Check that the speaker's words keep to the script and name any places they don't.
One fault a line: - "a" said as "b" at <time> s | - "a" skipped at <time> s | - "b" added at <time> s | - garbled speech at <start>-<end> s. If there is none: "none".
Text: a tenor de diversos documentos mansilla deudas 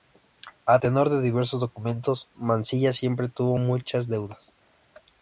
- "siempre tuvo muchas" added at 2.9 s